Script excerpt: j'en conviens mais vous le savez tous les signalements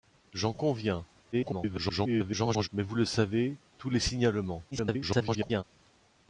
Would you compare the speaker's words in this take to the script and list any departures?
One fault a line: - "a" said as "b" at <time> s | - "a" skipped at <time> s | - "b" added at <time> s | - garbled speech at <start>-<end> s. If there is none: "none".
- garbled speech at 1.3-2.7 s
- garbled speech at 4.7-5.6 s